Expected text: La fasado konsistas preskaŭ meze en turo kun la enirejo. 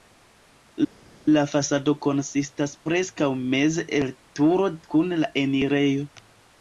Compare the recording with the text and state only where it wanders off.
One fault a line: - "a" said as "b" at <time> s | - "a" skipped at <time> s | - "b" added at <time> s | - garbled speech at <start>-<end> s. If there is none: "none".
- "en" said as "el" at 4.0 s